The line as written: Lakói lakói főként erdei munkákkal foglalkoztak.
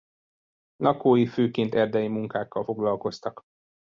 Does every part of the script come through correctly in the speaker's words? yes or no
no